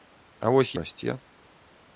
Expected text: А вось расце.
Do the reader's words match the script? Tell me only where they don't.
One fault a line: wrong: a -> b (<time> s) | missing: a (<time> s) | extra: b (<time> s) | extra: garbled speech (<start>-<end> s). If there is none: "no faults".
no faults